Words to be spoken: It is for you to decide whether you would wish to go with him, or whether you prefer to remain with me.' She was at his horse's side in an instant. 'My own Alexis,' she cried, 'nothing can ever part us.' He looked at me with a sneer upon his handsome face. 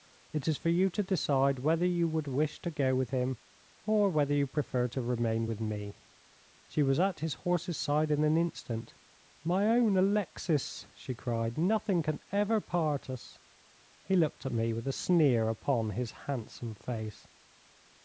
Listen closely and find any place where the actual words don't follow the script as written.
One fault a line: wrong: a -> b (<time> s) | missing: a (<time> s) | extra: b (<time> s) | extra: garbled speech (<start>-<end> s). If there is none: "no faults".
no faults